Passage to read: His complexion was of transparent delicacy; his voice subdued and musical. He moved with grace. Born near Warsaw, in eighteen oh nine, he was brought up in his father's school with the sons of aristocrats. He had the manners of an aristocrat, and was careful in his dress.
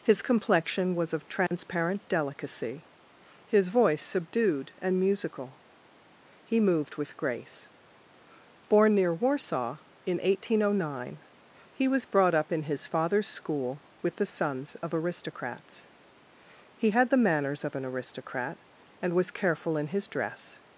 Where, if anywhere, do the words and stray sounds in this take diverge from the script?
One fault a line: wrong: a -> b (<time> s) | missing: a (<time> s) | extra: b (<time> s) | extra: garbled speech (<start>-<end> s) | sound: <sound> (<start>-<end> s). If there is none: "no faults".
sound: dropout (1.5-1.5 s)